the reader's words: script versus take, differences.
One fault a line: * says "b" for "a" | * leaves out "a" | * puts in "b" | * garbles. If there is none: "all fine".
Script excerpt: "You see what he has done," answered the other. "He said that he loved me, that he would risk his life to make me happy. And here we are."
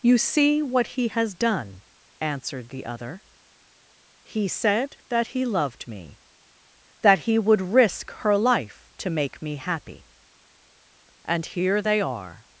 * says "her" for "his"
* says "they" for "we"